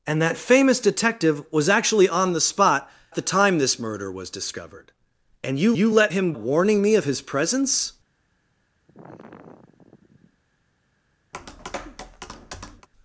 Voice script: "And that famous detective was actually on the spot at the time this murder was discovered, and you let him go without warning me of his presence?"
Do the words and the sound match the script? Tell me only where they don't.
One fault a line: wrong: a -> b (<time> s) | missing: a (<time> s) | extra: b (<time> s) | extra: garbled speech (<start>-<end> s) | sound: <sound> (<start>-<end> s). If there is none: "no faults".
missing: at (2.9 s)
extra: you (5.7 s)
missing: go without (6.3 s)
sound: sigh (8.9-10.4 s)
sound: tap (11.3-12.9 s)